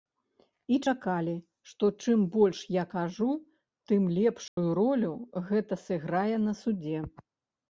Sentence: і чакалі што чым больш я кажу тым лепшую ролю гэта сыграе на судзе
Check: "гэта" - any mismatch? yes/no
no